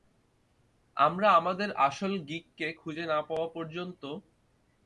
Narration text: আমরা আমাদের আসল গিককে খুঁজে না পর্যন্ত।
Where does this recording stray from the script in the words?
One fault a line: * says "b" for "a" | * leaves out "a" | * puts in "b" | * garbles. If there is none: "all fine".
* puts in "পাওয়া"